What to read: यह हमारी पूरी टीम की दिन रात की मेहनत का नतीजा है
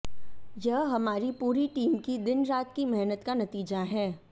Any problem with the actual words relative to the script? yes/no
no